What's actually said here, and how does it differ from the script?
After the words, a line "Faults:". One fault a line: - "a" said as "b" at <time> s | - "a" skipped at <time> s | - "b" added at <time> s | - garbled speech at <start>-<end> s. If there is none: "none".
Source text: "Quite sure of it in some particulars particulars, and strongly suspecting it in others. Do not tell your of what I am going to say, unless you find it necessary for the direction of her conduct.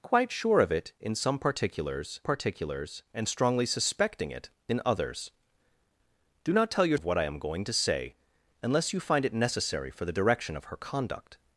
"Quite sure of it in some particulars particulars, and strongly suspecting it in others. Do not tell your of what I am going to say, unless you find it necessary for the direction of her conduct.
Faults:
none